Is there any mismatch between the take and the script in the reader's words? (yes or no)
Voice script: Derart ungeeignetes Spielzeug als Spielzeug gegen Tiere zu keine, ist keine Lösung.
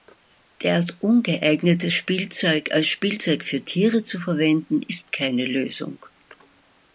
yes